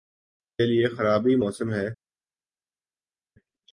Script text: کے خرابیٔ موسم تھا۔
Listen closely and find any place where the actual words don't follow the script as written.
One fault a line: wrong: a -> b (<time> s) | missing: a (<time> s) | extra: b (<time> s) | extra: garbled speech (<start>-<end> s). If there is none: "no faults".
extra: لئے (0.7 s)
wrong: تھا -> ہے (1.7 s)